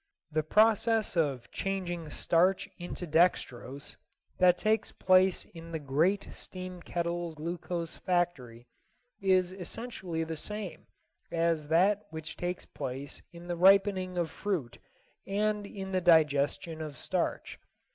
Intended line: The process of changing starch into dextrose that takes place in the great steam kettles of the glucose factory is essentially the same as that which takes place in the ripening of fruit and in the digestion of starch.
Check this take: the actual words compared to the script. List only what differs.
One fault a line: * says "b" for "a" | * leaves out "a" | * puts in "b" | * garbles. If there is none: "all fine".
* leaves out "of the"